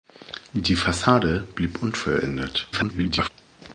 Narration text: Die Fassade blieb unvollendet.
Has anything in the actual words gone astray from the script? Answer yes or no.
yes